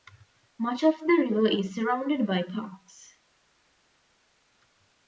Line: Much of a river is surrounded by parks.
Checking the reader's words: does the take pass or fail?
fail